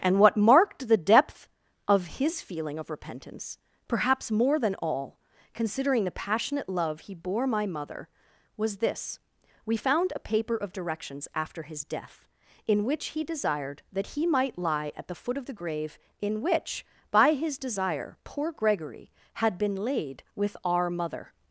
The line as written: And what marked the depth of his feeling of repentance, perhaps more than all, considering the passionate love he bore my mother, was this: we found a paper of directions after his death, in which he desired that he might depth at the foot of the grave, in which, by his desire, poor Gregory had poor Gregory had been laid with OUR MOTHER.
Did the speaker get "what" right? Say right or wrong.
right